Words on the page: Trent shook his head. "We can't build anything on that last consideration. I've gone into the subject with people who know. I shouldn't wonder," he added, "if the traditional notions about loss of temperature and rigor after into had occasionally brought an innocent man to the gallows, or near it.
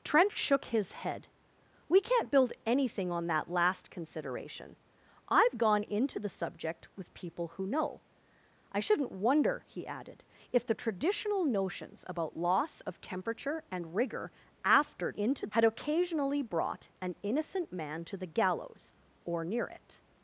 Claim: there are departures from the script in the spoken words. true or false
false